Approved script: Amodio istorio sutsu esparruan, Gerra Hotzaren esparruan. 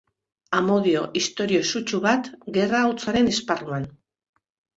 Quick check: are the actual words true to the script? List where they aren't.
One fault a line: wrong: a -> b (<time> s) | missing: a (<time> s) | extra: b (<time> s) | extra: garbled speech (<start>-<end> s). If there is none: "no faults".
wrong: esparruan -> bat (2.1 s)